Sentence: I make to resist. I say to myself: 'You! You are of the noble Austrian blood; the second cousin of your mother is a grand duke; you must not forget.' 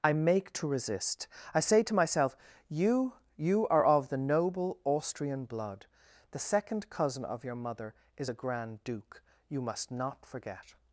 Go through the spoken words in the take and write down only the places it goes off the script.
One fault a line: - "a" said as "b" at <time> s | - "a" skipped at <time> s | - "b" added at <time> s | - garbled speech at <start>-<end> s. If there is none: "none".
none